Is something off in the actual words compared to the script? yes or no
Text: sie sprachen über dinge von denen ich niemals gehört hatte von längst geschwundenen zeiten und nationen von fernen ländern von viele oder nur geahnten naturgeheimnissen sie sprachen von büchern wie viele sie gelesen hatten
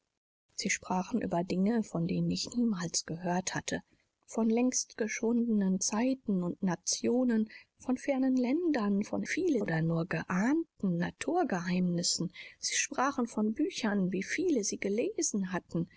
no